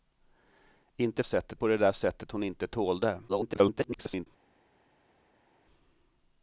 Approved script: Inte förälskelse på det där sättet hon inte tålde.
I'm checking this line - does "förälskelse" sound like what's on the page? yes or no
no